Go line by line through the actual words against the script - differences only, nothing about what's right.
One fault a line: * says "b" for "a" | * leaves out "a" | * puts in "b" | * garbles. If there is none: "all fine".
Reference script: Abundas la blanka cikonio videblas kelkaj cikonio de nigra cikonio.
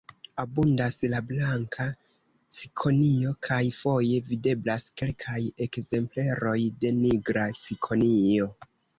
* puts in "kaj foje"
* says "ekzempleroj" for "cikonio"